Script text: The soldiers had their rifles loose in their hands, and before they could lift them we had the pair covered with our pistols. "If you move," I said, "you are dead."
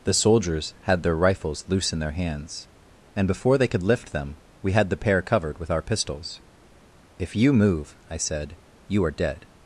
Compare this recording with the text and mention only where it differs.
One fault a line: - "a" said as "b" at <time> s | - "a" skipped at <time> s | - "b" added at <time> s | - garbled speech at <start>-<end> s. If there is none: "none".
none